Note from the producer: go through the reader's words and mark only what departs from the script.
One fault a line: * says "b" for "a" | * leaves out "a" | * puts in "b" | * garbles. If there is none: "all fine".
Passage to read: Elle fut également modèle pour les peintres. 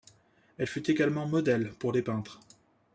all fine